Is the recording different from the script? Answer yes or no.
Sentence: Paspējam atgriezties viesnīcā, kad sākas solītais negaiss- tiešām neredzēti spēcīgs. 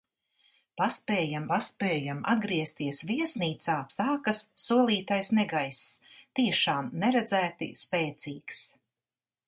yes